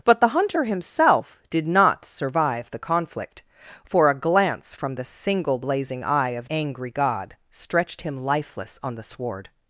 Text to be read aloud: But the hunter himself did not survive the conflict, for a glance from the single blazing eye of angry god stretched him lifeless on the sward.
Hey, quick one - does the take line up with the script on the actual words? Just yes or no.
yes